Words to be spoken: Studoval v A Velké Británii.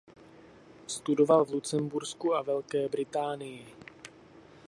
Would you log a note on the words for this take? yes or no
yes